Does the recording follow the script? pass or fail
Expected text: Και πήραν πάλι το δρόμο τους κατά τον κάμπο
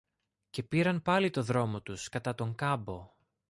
pass